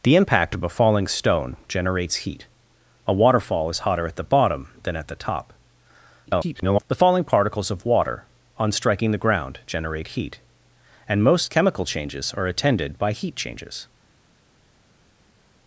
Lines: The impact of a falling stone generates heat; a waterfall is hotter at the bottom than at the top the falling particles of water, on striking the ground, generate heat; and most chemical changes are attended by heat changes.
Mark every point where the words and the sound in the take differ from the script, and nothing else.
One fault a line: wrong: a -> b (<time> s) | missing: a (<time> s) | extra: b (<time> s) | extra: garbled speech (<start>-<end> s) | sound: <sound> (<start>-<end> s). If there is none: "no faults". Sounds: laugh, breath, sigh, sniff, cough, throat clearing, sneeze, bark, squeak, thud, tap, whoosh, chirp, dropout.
extra: garbled speech (6.3-6.8 s)